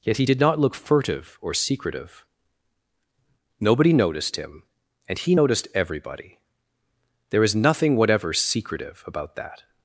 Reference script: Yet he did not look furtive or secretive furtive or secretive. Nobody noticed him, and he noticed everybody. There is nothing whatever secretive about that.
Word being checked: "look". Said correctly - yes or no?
yes